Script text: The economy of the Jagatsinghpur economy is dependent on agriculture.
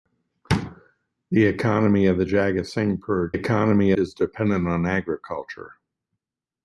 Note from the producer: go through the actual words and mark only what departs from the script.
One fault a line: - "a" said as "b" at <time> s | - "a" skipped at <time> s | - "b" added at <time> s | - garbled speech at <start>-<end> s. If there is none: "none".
none